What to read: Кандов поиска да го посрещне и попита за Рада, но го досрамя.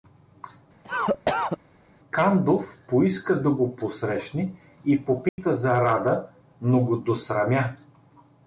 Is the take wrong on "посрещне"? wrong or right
right